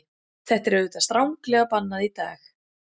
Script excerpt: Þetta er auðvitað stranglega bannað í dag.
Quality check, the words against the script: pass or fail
pass